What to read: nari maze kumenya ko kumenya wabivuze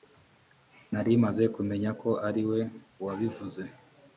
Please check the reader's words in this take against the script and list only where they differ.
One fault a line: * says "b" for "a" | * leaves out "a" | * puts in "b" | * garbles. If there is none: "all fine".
* says "ariwe" for "kumenya"